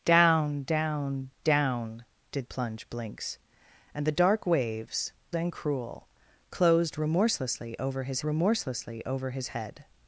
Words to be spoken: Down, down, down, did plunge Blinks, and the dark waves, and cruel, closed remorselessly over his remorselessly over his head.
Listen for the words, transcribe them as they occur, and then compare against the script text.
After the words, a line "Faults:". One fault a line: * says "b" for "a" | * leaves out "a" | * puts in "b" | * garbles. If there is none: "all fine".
Down, down, down, did plunge Blinks, and the dark waves, and cruel, closed remorselessly over his remorselessly over his head.
Faults:
all fine